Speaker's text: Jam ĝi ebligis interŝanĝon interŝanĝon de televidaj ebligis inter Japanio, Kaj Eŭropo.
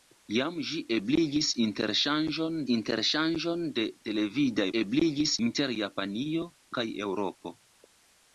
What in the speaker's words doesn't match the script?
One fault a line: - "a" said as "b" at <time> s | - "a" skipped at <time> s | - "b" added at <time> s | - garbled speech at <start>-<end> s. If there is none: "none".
none